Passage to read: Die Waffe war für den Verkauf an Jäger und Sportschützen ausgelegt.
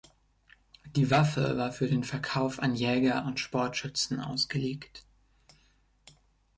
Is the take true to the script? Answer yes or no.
yes